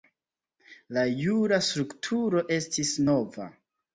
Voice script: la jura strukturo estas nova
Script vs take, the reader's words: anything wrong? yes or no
yes